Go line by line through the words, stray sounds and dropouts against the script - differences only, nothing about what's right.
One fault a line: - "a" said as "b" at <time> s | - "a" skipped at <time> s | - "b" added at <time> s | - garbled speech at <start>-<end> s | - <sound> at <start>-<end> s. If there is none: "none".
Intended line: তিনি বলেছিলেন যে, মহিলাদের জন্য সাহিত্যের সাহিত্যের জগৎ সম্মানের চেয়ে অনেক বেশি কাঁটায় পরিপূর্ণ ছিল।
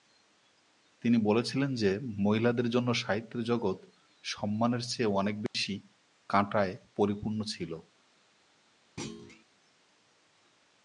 - "সাহিত্যের" skipped at 3.4 s
- dropout at 5.5-5.5 s
- thud at 9.0-9.4 s